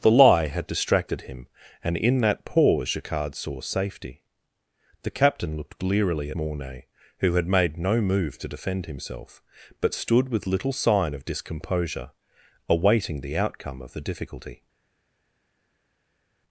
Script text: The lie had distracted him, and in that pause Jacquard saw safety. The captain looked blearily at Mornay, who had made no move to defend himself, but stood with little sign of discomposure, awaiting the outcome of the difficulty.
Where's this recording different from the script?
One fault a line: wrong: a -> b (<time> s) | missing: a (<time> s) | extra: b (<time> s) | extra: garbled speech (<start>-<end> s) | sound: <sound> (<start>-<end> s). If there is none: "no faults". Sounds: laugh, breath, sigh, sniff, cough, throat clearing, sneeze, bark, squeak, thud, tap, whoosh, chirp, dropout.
missing: at (6.3 s)